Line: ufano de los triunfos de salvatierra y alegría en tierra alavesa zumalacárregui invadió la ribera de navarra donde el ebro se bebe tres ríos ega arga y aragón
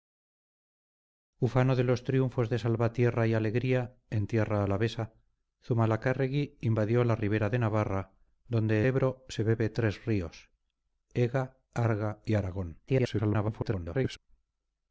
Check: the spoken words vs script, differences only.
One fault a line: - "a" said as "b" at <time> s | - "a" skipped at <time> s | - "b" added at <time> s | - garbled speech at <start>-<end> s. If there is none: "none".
- "el" skipped at 8.8 s
- garbled speech at 12.9-14.2 s